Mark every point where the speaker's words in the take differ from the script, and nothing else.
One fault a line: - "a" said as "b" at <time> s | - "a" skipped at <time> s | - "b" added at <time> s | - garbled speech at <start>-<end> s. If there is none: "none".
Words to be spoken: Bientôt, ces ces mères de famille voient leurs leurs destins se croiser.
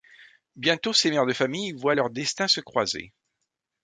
- "ces" skipped at 1.1 s
- "leurs" skipped at 2.1 s